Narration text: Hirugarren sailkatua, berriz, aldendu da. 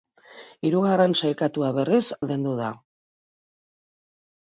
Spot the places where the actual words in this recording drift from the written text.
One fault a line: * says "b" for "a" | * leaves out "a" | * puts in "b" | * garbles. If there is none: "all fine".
all fine